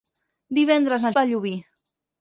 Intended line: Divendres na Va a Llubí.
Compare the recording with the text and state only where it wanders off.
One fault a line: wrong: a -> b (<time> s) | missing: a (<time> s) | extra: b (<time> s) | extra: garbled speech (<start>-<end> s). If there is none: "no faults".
no faults